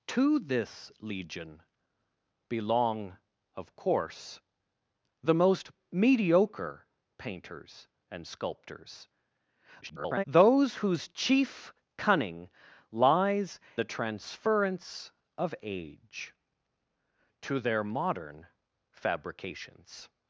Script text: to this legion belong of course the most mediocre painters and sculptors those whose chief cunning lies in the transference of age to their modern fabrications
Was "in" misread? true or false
true